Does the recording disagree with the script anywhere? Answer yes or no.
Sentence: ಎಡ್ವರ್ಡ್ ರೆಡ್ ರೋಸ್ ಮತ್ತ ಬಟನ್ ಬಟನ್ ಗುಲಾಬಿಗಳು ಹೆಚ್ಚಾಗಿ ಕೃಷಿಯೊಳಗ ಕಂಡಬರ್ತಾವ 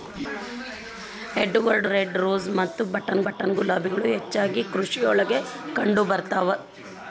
no